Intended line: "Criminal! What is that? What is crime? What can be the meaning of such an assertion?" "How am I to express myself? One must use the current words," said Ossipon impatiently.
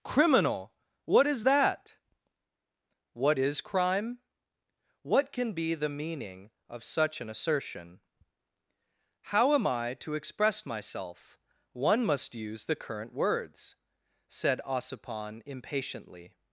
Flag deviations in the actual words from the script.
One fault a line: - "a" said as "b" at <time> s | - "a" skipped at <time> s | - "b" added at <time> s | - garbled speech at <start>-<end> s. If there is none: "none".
none